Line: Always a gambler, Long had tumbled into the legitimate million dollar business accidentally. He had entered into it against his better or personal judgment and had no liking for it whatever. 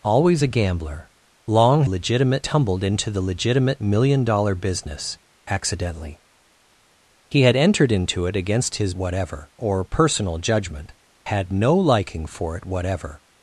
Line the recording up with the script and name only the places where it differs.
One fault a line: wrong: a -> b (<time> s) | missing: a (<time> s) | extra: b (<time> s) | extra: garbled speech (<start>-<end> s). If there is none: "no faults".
wrong: had -> legitimate (1.9 s)
wrong: better -> whatever (9.0 s)
missing: and (10.9 s)